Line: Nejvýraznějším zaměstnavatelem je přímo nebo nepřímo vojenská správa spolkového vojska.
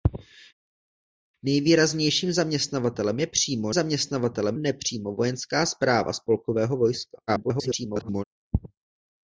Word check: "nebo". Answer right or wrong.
wrong